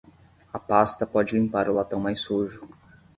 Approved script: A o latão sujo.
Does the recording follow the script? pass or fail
fail